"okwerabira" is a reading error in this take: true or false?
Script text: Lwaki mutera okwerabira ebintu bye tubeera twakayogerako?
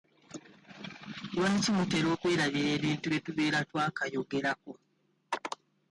false